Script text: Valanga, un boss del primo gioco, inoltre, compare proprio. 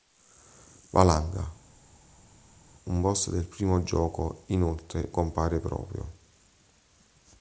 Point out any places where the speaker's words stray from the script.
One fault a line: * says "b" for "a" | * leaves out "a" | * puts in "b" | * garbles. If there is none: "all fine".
all fine